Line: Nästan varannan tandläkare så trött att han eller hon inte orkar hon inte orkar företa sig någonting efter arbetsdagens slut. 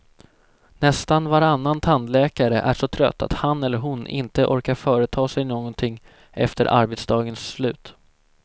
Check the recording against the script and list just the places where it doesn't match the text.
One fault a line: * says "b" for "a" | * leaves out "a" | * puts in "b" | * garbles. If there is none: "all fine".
* puts in "är"
* leaves out "hon inte orkar"